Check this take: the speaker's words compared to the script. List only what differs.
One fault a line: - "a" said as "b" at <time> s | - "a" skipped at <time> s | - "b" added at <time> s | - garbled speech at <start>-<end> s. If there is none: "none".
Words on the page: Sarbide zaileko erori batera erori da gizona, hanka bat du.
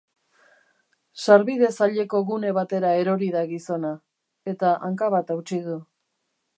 - "erori" said as "gune" at 2.3 s
- "eta" added at 4.5 s
- "hautsi" added at 5.4 s